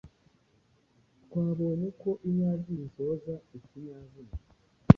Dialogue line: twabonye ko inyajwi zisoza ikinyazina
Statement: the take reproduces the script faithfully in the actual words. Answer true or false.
true